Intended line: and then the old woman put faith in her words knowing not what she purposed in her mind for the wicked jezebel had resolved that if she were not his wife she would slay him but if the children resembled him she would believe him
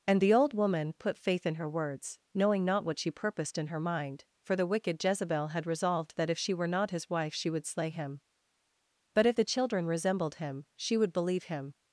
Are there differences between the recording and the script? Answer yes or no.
yes